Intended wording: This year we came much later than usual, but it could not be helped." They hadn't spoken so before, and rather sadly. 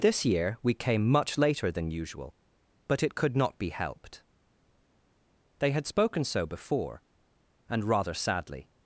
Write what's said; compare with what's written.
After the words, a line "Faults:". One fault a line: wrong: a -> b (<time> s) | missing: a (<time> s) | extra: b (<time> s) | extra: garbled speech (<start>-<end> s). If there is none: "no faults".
This year we came much later than usual, but it could not be helped." They had spoken so before, and rather sadly.
Faults:
wrong: hadn't -> had (5.7 s)